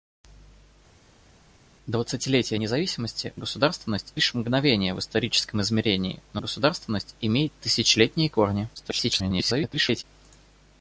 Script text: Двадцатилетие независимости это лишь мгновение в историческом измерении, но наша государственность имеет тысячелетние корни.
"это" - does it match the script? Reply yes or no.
no